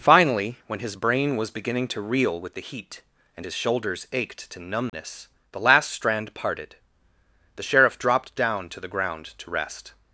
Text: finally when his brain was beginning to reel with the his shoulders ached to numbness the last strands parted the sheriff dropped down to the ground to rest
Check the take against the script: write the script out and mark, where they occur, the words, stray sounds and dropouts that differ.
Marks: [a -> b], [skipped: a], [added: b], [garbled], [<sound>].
finally when his brain was beginning to reel with the [added: heat and] his shoulders ached to numbness [dropout] the last [strands -> strand] parted the sheriff dropped down to the ground to rest